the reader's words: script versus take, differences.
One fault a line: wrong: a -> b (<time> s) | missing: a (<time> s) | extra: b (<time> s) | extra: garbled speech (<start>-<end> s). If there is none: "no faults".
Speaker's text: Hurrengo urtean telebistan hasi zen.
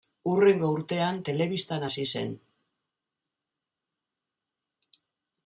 no faults